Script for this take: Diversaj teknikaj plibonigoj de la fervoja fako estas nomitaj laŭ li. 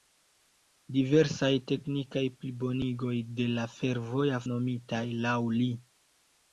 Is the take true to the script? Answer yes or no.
no